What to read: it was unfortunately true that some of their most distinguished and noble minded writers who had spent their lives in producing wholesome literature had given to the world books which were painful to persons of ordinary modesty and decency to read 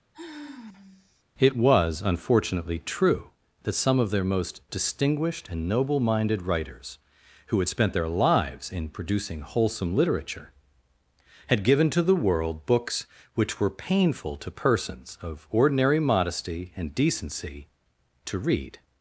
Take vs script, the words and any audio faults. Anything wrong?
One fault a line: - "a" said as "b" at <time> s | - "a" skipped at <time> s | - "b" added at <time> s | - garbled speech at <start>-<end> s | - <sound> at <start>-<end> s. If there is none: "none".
- sigh at 0.1-1.2 s